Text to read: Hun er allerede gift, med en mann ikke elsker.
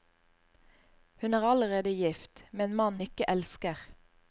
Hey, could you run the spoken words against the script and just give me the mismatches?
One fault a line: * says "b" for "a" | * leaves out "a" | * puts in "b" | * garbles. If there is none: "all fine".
all fine